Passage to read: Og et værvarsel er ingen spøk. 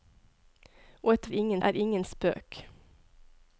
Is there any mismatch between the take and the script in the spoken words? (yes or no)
yes